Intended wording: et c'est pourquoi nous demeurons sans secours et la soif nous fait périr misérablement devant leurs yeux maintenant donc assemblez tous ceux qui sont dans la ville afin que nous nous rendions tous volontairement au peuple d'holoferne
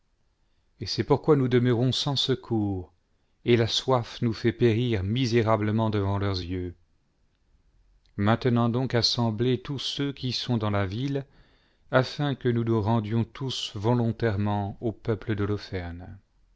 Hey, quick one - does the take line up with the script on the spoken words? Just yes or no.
yes